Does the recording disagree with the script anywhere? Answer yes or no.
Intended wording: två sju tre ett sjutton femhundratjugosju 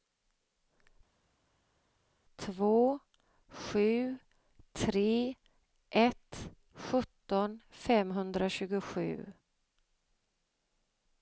no